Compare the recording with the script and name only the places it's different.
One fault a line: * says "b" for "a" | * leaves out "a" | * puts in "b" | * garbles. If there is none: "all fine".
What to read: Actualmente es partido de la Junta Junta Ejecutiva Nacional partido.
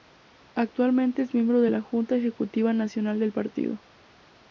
* says "miembro" for "partido"
* leaves out "Junta"
* puts in "del"